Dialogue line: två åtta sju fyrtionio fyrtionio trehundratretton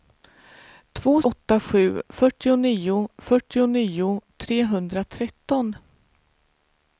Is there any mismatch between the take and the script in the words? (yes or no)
no